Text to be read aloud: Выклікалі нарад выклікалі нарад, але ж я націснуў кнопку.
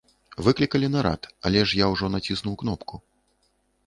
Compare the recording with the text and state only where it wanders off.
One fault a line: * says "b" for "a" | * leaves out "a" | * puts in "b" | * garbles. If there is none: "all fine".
* leaves out "выклікалі нарад"
* puts in "ўжо"